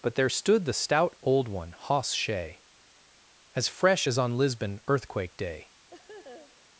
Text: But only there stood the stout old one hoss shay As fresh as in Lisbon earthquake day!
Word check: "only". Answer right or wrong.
wrong